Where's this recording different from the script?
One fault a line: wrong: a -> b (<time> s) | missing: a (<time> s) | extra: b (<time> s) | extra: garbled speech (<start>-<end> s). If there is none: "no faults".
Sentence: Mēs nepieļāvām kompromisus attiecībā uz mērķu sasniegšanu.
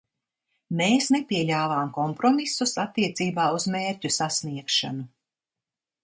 no faults